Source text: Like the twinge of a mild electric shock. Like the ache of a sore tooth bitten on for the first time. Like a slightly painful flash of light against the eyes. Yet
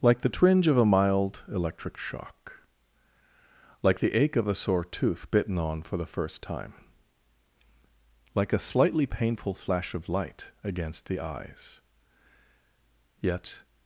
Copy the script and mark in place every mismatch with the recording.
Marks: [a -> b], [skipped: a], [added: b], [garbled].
Like the twinge of a mild electric shock. Like the ache of a sore tooth bitten on for the first time. Like a slightly painful flash of light against the eyes. Yet